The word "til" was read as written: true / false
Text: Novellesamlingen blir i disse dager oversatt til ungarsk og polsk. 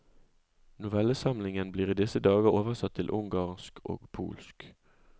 true